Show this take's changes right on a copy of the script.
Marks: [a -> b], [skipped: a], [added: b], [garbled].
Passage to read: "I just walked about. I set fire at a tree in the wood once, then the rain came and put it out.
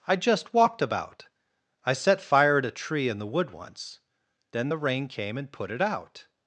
"I just walked about. I set fire at a tree in the wood once, then the rain came and put it out.